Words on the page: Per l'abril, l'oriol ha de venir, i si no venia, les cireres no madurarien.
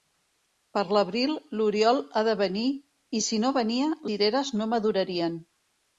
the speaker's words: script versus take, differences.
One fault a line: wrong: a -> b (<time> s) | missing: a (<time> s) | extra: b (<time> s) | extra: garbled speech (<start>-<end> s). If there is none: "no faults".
missing: les (3.9 s)